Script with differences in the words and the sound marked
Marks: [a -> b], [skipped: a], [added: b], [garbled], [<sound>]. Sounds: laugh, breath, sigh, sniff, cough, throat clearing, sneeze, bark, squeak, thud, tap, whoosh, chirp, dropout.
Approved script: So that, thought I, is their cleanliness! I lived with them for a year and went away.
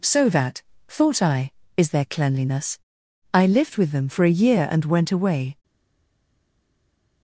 So that, thought I, is their cleanliness! I lived with them for a year and went away.